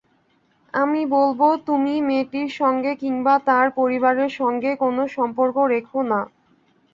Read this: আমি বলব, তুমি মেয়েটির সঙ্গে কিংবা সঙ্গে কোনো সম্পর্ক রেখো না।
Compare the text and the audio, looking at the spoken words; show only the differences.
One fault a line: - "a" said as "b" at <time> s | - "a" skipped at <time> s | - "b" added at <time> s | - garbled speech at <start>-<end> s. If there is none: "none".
- "তার পরিবারের" added at 3.5 s